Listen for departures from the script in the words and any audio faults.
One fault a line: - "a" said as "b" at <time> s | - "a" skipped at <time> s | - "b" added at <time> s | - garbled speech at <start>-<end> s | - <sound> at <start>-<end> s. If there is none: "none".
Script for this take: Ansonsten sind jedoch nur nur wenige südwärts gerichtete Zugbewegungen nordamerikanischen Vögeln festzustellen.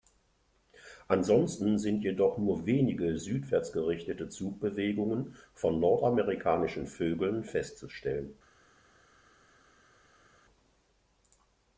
- "nur" skipped at 2.6 s
- "von" added at 5.5 s